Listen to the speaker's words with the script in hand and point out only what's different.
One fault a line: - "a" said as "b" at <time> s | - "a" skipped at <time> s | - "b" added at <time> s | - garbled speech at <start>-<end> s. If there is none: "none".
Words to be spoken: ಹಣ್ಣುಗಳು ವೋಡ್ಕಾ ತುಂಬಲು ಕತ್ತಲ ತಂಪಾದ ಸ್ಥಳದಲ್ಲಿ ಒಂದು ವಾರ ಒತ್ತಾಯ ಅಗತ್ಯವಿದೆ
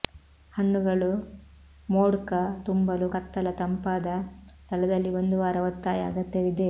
none